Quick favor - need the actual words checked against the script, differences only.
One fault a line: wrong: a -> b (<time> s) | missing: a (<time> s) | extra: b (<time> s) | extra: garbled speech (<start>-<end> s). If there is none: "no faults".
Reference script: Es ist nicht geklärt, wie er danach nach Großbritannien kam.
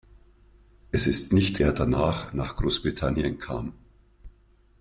missing: geklärt wie (1.6 s)